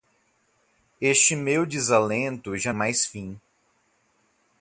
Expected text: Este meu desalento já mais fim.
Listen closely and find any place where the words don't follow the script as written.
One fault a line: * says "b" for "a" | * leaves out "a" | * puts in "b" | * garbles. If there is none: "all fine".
all fine